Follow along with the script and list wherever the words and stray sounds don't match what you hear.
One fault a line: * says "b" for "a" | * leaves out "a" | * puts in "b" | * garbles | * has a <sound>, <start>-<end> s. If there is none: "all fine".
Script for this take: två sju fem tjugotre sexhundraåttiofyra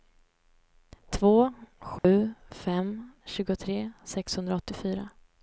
* has a dropout, 2.0-2.0 s